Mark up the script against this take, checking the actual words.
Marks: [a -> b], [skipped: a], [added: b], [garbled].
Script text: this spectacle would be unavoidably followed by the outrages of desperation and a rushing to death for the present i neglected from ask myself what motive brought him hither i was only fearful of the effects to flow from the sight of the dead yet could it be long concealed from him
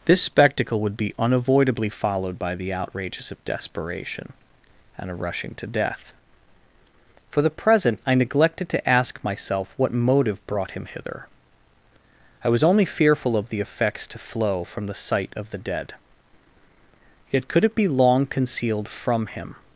this spectacle would be unavoidably followed by the outrages of desperation and a rushing to death for the present i neglected [from -> to] ask myself what motive brought him hither i was only fearful of the effects to flow from the sight of the dead yet could it be long concealed from him